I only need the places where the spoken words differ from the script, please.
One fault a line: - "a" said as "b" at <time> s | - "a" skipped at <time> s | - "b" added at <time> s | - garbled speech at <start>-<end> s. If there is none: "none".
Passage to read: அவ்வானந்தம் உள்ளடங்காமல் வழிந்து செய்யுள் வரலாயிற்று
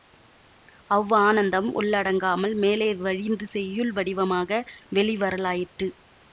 - "மேலே" added at 2.6 s
- "வடிவமாக வெளி" added at 3.9 s